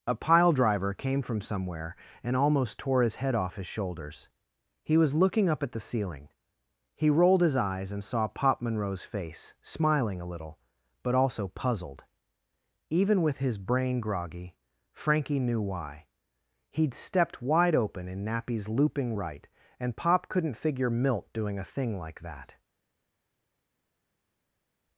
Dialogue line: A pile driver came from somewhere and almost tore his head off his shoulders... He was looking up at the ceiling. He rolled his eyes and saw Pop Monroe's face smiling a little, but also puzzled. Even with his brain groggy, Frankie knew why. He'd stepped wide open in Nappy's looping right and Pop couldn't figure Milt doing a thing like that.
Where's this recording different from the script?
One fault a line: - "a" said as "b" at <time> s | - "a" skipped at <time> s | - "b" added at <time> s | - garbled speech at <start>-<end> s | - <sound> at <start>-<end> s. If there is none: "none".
none